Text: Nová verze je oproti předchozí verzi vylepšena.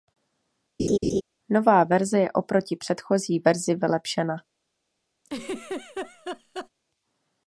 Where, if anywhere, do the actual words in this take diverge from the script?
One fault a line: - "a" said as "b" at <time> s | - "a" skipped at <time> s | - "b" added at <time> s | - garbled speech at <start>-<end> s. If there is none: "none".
none